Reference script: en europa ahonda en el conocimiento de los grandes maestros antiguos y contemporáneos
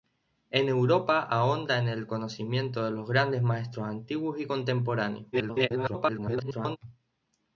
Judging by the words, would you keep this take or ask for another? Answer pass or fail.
fail